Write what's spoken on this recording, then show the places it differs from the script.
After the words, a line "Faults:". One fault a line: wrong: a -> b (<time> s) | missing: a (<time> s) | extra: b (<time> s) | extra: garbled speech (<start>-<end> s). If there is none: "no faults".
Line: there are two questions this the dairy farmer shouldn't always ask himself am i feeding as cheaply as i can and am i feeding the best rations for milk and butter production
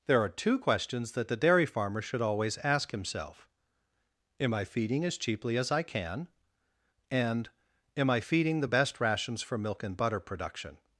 there are two questions that the dairy farmer should always ask himself am i feeding as cheaply as i can and am i feeding the best rations for milk and butter production
Faults:
wrong: this -> that (1.1 s)
wrong: shouldn't -> should (2.0 s)